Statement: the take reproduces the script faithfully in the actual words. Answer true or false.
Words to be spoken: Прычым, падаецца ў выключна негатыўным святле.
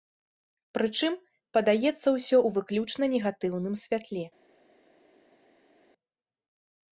false